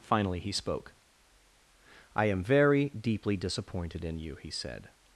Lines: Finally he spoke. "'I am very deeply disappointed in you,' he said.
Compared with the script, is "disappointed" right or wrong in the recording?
right